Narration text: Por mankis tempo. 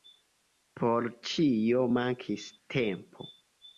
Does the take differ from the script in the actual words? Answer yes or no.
yes